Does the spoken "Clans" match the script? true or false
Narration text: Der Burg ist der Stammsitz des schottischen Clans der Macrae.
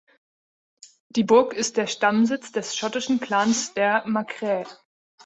true